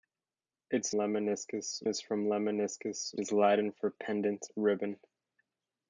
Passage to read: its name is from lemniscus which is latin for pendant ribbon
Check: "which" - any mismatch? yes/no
yes